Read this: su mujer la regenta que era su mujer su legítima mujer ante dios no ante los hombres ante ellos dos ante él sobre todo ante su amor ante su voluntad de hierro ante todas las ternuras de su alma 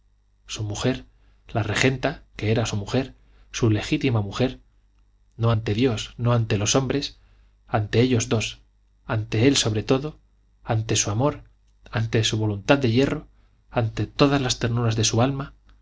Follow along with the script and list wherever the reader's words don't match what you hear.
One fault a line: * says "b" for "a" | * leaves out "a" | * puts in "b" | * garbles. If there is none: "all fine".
* puts in "no"